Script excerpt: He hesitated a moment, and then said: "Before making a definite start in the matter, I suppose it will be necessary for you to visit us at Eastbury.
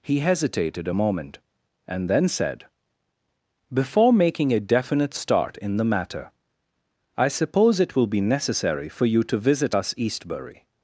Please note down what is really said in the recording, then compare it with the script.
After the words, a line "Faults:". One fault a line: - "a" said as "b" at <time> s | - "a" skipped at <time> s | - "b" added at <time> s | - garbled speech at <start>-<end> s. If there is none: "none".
He hesitated a moment, and then said: "Before making a definite start in the matter, I suppose it will be necessary for you to visit us Eastbury.
Faults:
- "at" skipped at 9.9 s